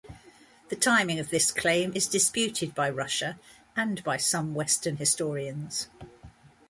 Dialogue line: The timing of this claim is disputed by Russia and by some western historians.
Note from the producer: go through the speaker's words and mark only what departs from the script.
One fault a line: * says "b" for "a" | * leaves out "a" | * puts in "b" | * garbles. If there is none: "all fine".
all fine